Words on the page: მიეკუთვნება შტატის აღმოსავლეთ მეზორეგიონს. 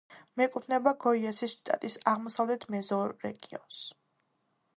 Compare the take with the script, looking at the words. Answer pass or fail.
fail